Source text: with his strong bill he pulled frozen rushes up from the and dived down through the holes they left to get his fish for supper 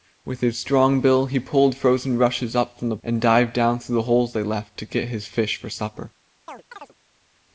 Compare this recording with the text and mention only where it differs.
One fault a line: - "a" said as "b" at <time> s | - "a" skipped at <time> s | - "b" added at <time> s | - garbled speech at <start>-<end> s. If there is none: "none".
none